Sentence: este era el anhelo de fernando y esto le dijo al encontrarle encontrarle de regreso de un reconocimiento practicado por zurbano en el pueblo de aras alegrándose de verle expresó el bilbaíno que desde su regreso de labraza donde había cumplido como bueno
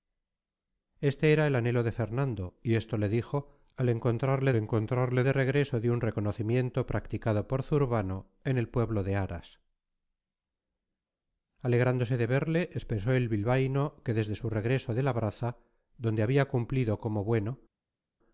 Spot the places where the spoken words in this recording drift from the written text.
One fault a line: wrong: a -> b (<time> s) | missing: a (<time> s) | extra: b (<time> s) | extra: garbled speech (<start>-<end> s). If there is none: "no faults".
no faults